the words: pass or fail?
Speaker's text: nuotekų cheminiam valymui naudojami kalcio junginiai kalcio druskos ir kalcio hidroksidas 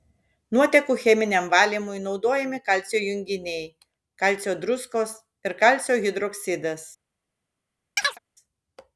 pass